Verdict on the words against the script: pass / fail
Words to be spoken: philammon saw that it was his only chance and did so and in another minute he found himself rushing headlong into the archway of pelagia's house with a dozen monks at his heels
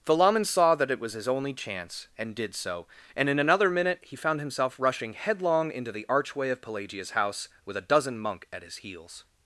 fail